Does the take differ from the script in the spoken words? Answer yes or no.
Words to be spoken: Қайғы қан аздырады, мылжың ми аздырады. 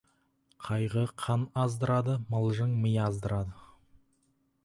no